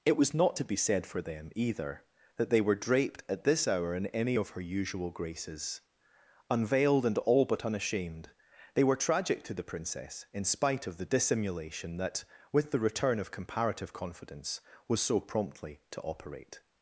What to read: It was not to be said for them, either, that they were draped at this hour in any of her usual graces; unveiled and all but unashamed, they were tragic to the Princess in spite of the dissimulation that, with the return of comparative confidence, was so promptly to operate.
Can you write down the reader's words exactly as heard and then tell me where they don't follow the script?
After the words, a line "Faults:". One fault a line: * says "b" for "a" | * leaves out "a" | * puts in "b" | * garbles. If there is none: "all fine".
It was not to be said for them, either, that they were draped at this hour in any of her usual graces; unveiled and all but unashamed, they were tragic to the Princess in spite of the dissimulation that, with the return of comparative confidence, was so promptly to operate.
Faults:
all fine